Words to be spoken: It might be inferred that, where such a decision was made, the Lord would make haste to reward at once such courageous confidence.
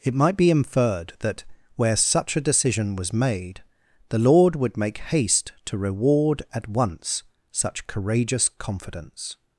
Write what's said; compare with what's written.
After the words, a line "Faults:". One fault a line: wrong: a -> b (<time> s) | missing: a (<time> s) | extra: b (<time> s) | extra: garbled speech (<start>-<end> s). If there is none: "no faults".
It might be inferred that, where such a decision was made, the Lord would make haste to reward at once such courageous confidence.
Faults:
no faults